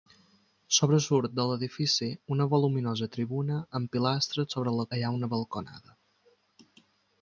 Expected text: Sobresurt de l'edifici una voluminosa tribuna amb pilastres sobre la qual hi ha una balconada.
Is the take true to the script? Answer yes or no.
no